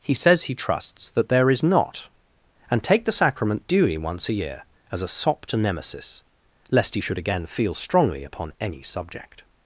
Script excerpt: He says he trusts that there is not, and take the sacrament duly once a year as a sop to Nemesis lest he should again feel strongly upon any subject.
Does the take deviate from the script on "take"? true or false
false